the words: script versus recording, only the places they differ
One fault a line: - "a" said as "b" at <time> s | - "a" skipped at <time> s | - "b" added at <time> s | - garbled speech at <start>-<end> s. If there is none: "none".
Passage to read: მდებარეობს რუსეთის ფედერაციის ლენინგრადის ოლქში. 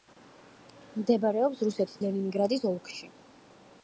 - "ფედერაციის" skipped at 2.0 s